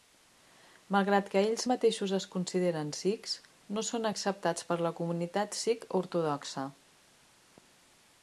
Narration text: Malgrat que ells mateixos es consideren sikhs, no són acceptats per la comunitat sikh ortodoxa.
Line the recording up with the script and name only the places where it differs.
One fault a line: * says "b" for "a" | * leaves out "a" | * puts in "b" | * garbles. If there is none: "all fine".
all fine